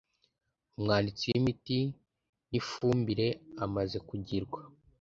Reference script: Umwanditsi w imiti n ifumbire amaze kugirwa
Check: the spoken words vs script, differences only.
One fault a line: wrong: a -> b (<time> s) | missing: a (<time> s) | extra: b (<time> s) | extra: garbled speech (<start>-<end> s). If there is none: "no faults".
no faults